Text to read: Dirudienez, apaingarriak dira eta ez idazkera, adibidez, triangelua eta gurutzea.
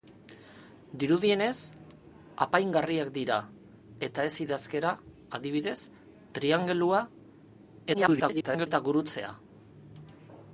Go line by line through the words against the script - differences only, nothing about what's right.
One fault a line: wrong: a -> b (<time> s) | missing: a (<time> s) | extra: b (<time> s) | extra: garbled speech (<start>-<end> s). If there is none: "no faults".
extra: garbled speech (7.9-8.7 s)